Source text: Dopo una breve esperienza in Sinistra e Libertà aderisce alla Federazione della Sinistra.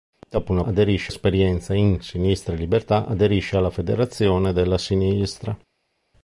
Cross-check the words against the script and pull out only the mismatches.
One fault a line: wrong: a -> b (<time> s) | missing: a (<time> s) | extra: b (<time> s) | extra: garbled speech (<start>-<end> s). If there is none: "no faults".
wrong: breve -> aderisce (0.6 s)